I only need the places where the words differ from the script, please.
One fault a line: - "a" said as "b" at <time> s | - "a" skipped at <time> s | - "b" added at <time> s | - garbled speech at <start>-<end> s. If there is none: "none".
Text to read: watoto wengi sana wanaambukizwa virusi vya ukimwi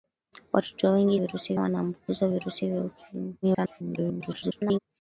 - "sana" said as "virusi" at 1.1 s
- garbled speech at 3.4-4.8 s